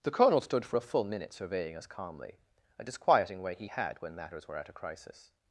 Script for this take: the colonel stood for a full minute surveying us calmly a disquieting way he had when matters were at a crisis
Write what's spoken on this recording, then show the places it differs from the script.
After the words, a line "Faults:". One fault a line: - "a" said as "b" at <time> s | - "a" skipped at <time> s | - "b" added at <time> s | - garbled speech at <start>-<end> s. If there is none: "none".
the colonel stood for a full minute surveying us calmly a disquieting way he had when matters were at a crisis
Faults:
none